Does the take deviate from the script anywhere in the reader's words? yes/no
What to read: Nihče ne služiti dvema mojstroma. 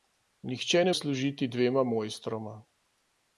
no